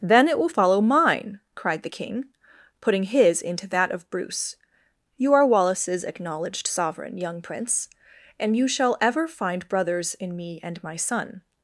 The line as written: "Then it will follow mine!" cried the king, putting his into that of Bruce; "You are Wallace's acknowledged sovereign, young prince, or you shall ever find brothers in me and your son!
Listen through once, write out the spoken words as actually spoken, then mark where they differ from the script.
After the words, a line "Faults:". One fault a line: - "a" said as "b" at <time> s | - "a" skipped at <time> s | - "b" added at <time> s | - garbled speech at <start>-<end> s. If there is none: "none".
"Then it will follow mine!" cried the king, putting his into that of Bruce; "You are Wallace's acknowledged sovereign, young prince, and you shall ever find brothers in me and my son!
Faults:
- "or" said as "and" at 8.4 s
- "your" said as "my" at 10.8 s